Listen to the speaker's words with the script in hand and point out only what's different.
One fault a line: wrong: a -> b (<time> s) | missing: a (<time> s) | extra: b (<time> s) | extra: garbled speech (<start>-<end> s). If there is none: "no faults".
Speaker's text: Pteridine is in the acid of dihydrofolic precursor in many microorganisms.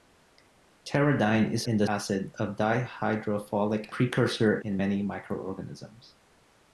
no faults